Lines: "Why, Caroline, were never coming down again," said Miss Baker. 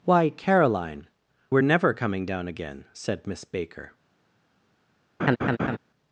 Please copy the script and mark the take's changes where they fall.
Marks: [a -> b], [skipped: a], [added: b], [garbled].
"Why, Caroline, were never coming down again," said Miss Baker.